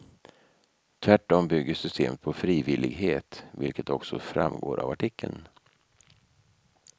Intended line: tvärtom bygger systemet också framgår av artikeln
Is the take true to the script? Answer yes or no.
no